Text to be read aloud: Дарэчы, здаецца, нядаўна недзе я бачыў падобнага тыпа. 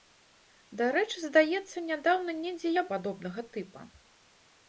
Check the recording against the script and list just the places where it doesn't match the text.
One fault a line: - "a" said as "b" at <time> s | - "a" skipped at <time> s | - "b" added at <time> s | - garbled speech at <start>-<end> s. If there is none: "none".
- "бачыў" skipped at 2.9 s